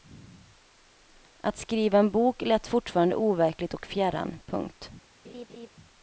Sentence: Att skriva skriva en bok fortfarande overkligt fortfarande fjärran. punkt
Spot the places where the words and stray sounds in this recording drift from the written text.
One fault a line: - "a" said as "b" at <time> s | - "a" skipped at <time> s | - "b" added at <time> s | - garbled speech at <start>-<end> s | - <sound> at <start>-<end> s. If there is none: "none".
- "skriva" skipped at 2.0 s
- "lät" added at 2.4 s
- "fortfarande" said as "och" at 3.7 s
- laugh at 5.2-5.7 s